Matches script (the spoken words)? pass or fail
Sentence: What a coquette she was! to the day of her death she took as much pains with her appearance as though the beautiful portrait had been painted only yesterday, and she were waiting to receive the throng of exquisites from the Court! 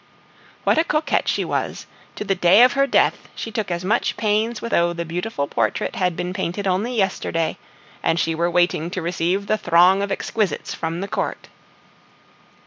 fail